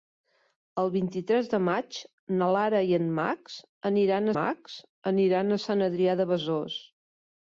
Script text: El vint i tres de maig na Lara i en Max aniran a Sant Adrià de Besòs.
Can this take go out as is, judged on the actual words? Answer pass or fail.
fail